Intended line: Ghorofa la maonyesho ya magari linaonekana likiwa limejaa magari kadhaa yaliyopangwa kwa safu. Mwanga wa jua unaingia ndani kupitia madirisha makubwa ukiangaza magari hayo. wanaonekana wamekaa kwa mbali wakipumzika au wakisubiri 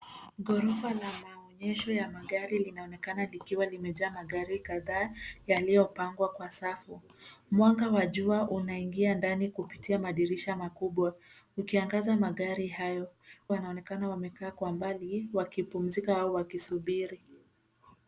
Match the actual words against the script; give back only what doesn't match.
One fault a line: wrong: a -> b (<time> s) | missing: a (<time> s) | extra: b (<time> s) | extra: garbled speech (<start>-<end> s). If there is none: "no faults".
no faults